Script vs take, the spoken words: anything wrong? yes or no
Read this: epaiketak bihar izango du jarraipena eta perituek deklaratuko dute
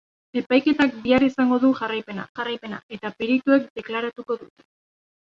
yes